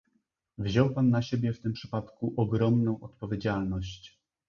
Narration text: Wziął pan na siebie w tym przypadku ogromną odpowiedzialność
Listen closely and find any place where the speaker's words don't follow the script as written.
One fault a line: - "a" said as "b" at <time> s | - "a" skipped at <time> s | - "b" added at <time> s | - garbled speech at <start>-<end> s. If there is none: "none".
none